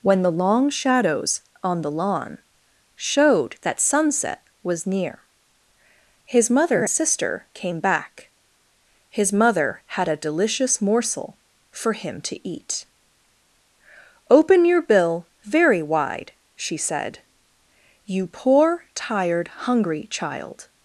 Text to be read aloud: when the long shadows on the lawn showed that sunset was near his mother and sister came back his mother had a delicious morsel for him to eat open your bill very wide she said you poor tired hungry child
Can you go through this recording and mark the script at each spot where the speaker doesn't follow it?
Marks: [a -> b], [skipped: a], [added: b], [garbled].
when the long shadows on the lawn showed that sunset was near his mother [skipped: and] sister came back his mother had a delicious morsel for him to eat open your bill very wide she said you poor tired hungry child